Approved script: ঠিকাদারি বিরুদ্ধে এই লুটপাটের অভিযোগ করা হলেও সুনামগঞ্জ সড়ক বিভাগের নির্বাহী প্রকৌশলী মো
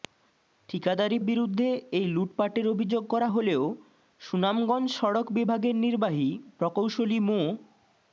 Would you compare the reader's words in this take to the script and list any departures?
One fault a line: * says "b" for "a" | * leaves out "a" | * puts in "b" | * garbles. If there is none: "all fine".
all fine